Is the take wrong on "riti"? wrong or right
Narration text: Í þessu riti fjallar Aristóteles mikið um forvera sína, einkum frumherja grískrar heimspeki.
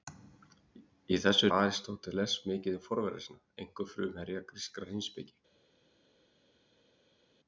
wrong